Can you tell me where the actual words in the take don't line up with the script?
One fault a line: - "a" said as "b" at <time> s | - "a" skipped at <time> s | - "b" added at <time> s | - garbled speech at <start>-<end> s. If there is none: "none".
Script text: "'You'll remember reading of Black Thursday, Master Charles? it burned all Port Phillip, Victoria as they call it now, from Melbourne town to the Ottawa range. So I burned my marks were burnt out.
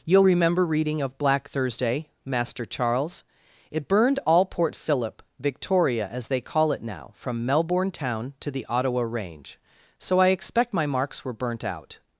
- "burned" said as "expect" at 10.3 s